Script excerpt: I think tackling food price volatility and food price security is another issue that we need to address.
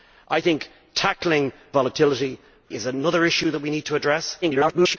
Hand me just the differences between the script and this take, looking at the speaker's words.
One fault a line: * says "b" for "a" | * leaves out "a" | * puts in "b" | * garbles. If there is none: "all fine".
* leaves out "food price"
* leaves out "food price security"
* garbles